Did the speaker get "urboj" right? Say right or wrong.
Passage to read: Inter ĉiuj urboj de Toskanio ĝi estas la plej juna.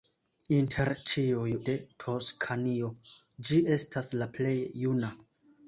wrong